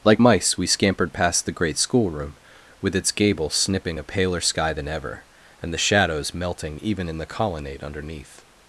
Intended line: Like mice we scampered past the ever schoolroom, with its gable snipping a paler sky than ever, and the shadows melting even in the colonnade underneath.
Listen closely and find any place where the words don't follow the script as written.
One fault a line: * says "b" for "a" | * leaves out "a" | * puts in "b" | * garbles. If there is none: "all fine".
* says "great" for "ever"